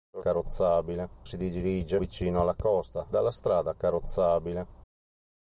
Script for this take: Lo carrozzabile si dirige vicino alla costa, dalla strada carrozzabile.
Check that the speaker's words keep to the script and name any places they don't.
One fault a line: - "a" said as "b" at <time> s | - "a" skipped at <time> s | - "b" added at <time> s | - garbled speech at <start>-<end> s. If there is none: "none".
none